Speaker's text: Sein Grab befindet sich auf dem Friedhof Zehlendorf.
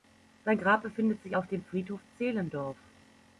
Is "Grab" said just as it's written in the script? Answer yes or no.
yes